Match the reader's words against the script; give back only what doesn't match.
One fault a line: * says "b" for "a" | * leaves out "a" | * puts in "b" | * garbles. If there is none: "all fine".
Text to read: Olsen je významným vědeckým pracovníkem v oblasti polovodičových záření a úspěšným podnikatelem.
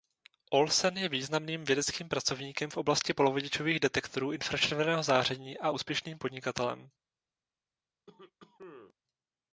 * puts in "detektorů infračerveného"